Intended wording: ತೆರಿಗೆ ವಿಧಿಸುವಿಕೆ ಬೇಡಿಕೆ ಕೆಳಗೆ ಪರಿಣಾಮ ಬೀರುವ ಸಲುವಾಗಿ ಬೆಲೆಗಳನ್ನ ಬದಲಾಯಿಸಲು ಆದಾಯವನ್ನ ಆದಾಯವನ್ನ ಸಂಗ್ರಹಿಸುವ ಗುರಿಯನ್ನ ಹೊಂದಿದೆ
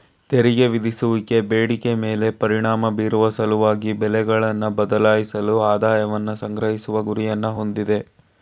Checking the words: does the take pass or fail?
fail